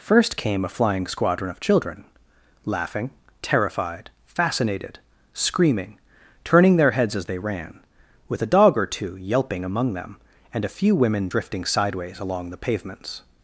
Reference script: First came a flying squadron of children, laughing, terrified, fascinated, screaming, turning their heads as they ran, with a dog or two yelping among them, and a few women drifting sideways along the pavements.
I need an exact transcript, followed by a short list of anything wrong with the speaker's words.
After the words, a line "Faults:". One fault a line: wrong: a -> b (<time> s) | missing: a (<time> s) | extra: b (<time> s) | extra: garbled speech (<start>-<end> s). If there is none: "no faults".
First came a flying squadron of children, laughing, terrified, fascinated, screaming, turning their heads as they ran, with a dog or two yelping among them, and a few women drifting sideways along the pavements.
Faults:
no faults